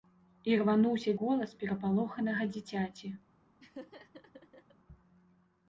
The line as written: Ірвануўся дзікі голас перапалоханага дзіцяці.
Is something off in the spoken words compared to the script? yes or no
yes